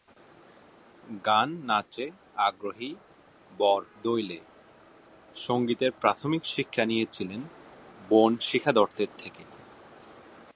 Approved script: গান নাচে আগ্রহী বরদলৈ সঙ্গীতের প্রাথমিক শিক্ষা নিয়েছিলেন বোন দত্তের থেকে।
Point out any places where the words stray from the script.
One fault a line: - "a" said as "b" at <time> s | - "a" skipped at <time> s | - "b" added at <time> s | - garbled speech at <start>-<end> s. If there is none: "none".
- "শিখা" added at 8.4 s